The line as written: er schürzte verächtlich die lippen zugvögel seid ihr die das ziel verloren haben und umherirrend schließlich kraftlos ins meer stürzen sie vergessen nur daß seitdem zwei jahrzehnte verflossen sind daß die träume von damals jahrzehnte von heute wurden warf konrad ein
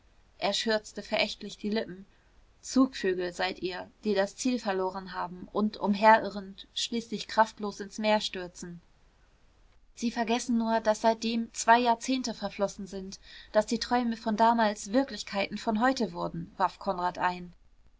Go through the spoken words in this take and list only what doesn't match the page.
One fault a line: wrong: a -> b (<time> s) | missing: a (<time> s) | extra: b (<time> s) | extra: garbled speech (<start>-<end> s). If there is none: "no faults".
wrong: jahrzehnte -> wirklichkeiten (14.9 s)